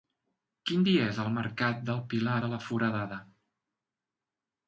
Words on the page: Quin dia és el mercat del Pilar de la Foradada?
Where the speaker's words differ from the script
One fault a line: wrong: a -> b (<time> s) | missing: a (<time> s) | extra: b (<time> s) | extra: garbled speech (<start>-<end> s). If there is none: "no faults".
no faults